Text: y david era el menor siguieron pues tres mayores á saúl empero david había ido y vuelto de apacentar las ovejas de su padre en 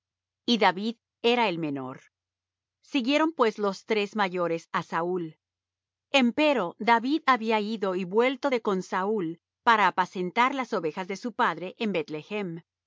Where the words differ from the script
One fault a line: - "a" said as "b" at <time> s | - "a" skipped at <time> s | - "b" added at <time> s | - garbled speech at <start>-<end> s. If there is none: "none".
- "los" added at 3.6 s
- "con saúl para" added at 8.6 s